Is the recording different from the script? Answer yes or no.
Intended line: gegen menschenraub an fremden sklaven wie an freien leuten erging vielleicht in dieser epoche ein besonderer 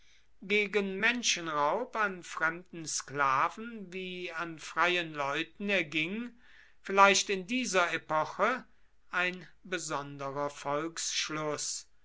no